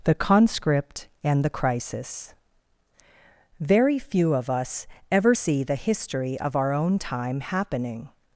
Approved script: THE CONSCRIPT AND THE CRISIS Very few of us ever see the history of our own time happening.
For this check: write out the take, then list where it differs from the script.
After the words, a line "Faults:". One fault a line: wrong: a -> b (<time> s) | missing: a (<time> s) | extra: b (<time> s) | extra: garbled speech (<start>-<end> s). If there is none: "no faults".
THE CONSCRIPT AND THE CRISIS Very few of us ever see the history of our own time happening.
Faults:
no faults